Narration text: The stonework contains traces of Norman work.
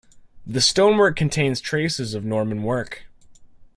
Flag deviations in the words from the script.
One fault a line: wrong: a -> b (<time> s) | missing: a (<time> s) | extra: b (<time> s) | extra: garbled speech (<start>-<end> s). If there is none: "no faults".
no faults